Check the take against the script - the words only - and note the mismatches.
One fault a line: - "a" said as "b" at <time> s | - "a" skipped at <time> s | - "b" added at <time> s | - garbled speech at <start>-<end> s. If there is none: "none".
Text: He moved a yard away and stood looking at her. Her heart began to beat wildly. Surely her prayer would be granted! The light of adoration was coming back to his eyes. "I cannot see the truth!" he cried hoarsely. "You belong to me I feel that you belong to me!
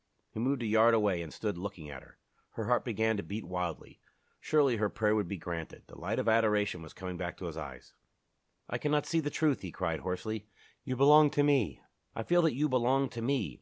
none